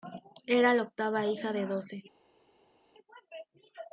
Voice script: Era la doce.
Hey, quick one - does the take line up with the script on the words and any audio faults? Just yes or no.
no